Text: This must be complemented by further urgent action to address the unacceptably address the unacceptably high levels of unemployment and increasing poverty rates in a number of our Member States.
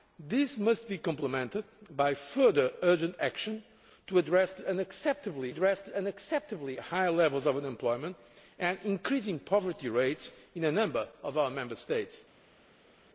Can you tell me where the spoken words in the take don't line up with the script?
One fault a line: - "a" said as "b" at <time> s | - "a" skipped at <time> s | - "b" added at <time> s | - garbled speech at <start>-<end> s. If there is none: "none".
none